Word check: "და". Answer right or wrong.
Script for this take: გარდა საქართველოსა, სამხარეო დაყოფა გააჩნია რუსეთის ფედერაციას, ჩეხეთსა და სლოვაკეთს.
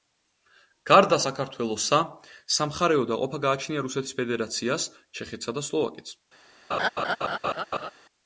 right